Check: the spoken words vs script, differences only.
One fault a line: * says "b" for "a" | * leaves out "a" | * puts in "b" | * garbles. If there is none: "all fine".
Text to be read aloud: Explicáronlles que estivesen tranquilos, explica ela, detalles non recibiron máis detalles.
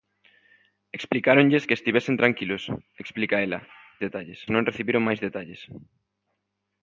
all fine